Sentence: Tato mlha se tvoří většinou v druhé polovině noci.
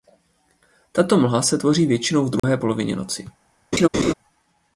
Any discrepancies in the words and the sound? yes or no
yes